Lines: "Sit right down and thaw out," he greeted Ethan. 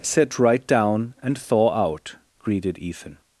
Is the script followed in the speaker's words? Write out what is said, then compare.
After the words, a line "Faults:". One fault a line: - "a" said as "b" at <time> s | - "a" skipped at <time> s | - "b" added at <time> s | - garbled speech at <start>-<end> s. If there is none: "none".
"Sit right down and thaw out," greeted Ethan.
Faults:
- "he" skipped at 2.1 s